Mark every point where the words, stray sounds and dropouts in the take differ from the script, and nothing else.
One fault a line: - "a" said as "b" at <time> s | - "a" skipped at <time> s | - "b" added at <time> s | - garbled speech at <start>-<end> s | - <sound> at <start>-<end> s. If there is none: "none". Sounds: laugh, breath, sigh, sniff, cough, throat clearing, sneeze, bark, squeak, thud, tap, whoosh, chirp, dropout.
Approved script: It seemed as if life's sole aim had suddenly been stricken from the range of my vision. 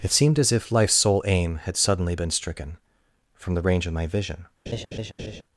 - laugh at 4.7-5.4 s